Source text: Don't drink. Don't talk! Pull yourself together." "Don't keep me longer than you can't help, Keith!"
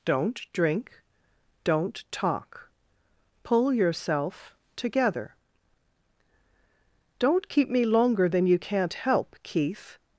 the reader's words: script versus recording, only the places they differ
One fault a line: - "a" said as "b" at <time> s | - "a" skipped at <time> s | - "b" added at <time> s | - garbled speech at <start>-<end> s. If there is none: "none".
none